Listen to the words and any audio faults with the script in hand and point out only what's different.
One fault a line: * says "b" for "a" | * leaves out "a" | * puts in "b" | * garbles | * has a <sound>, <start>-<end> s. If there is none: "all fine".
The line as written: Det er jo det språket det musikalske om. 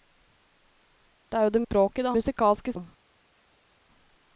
all fine